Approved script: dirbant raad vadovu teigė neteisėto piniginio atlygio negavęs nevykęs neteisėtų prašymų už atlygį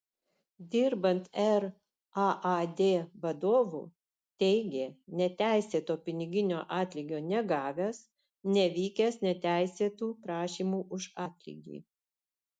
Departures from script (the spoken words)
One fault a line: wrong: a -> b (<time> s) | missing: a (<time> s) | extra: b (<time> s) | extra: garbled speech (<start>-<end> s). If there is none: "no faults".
no faults